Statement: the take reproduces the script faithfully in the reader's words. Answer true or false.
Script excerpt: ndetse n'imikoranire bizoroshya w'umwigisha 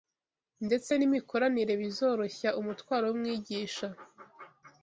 false